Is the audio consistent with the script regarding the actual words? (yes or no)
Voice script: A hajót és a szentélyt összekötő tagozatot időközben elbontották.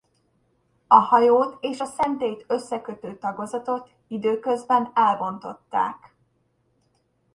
yes